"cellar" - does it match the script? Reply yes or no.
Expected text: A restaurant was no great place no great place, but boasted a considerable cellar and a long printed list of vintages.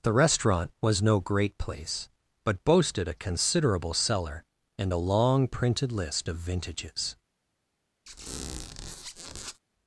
yes